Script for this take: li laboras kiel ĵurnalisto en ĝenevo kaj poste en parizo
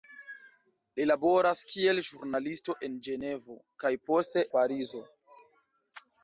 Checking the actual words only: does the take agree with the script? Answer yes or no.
no